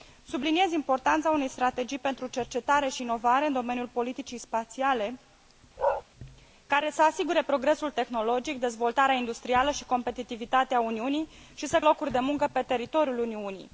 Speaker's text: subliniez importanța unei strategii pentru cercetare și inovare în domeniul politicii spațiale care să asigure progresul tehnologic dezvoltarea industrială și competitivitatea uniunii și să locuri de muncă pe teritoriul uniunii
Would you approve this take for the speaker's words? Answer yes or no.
yes